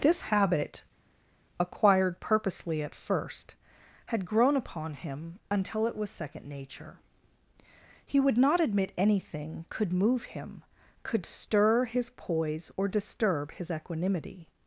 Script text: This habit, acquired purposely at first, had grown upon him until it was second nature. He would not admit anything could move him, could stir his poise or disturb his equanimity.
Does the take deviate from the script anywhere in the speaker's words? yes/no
no